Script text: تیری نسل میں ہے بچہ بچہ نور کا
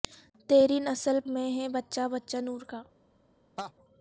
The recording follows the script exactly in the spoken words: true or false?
true